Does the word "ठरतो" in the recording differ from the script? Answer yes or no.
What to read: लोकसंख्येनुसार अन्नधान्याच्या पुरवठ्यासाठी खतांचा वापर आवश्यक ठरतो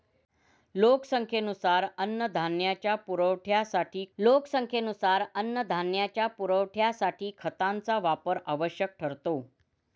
no